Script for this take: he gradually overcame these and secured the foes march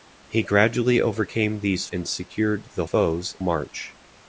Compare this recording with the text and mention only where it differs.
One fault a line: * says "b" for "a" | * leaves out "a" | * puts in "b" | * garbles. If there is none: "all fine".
all fine